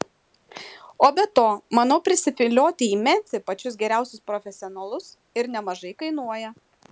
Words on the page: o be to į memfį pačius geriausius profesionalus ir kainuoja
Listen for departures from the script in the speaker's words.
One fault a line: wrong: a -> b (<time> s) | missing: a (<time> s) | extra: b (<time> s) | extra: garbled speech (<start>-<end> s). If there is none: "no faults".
extra: manau prisivilioti (1.8 s)
extra: nemažai (5.6 s)